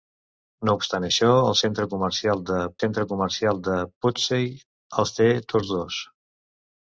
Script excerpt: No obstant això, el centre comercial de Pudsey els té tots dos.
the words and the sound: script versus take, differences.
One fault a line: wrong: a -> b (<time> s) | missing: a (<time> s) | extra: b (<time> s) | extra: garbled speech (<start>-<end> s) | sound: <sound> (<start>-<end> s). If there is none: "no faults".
extra: centre comercial de (2.8 s)